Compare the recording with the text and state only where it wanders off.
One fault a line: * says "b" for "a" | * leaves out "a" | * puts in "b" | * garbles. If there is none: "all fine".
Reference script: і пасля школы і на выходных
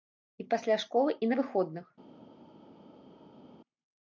all fine